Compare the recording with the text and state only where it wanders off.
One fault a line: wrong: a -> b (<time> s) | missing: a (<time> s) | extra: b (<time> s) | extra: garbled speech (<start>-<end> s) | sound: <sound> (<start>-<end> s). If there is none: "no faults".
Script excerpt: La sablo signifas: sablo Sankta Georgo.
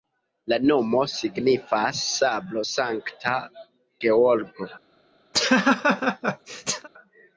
wrong: sablo -> nomo (0.7 s)
sound: laugh (5.3-6.9 s)